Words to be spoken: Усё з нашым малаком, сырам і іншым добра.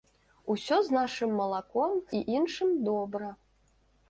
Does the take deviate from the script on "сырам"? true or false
true